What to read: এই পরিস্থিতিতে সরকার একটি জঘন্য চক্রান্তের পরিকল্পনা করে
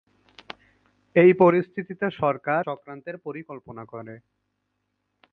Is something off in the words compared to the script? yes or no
yes